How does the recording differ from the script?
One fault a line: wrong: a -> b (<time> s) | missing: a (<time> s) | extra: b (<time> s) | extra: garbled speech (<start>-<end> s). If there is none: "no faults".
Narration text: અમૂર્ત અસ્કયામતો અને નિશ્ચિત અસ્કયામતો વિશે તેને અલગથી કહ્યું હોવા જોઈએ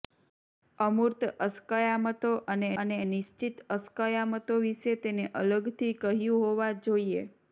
extra: અને (2.8 s)